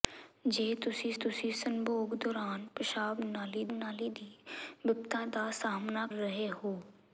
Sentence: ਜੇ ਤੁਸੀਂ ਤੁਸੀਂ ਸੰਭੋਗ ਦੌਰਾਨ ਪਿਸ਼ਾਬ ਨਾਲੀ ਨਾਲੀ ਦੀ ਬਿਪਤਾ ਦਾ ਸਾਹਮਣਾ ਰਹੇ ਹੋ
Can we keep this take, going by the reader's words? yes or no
yes